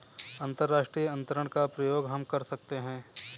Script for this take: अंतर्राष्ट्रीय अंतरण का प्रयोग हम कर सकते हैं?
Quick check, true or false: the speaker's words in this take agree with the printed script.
true